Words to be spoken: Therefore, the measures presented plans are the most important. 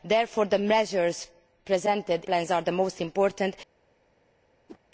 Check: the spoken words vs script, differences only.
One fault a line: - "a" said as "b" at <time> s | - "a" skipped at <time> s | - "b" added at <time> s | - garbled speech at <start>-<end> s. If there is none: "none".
none